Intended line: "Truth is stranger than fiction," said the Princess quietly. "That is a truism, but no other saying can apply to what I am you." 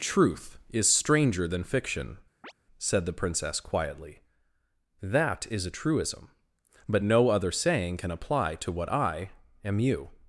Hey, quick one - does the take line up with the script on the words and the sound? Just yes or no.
no